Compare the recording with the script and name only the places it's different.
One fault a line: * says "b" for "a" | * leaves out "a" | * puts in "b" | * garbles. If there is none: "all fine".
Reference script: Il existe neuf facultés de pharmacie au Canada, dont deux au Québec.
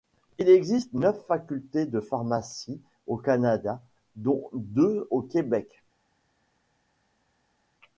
all fine